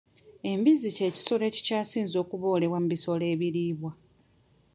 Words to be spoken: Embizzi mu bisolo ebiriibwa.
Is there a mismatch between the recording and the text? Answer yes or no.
yes